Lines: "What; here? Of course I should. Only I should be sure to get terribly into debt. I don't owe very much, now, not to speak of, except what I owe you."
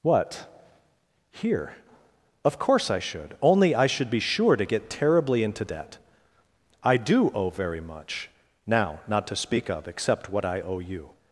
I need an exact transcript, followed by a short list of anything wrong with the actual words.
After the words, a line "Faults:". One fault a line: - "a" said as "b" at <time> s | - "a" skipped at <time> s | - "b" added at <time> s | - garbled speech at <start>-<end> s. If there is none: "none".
"What; here? Of course I should. Only I should be sure to get terribly into debt. I do owe very much, now, not to speak of, except what I owe you."
Faults:
- "don't" said as "do" at 7.0 s